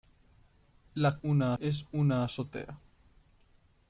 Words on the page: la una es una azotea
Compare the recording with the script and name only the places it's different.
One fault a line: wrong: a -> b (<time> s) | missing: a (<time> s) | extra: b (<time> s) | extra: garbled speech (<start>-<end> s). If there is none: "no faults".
no faults